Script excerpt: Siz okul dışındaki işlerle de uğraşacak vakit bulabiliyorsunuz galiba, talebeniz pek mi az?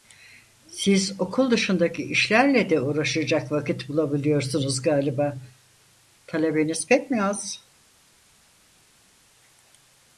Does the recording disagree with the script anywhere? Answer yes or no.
no